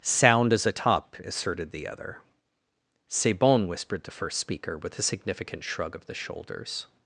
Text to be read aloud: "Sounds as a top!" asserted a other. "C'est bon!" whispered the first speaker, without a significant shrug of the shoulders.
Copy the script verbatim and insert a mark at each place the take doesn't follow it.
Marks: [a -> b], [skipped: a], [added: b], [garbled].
["Sounds -> Sound] as a top!" asserted [a -> the] other. "C'est bon!" whispered the first speaker, [without -> with] a significant shrug of the shoulders.